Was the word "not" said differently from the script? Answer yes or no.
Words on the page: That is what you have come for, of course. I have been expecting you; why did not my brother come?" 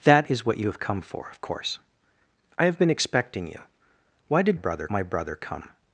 yes